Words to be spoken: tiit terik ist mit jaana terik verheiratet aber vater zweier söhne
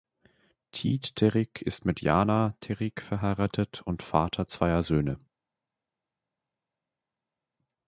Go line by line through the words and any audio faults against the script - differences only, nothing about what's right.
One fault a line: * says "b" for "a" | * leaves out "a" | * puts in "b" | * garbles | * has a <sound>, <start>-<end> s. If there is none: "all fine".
* says "und" for "aber"